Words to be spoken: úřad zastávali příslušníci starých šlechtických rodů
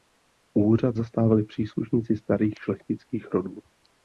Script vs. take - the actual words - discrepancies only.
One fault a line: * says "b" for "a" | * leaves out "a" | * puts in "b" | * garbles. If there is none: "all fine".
all fine